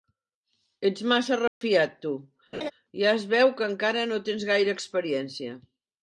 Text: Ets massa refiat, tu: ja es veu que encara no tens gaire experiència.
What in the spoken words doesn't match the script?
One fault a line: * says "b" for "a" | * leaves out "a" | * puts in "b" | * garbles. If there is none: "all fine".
all fine